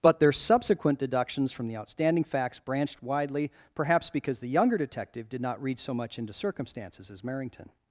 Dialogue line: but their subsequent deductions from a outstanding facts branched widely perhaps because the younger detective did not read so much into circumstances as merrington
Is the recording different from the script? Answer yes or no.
yes